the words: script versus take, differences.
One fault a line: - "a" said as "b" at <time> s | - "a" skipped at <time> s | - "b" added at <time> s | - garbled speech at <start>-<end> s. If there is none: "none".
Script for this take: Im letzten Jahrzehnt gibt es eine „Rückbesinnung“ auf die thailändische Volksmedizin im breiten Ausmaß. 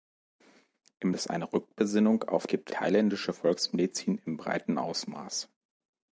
- "letzten Jahrzehnt gibt" skipped at 1.1 s
- "die" said as "gibt" at 2.5 s